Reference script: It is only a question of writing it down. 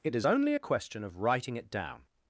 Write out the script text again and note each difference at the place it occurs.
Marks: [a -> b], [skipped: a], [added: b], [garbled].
It is only a question of writing it down.